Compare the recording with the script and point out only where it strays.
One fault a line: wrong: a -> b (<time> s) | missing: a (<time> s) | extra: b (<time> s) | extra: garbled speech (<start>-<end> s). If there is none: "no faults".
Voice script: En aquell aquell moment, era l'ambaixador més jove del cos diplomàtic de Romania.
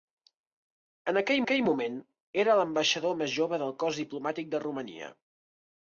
no faults